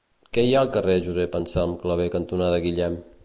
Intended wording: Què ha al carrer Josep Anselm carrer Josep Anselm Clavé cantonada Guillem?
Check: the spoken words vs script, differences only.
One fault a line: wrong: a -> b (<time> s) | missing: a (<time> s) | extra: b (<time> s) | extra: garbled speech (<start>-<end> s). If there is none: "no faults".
extra: hi (0.5 s)
missing: carrer Josep Anselm (1.7 s)